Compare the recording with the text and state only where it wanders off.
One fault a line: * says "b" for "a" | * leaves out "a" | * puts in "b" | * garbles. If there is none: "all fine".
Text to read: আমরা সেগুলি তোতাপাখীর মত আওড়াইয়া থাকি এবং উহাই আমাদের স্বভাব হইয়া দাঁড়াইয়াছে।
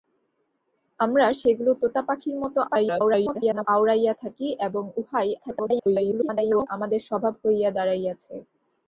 * garbles
* garbles